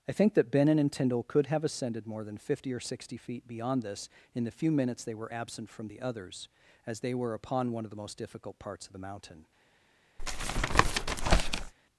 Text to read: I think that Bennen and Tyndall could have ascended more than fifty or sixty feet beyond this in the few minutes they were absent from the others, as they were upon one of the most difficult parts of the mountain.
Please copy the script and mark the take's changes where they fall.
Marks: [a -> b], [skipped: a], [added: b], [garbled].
I think that Bennen and Tyndall could have ascended more than fifty or sixty feet beyond this in the few minutes they were absent from the others, as they were upon one of the most difficult parts of the mountain.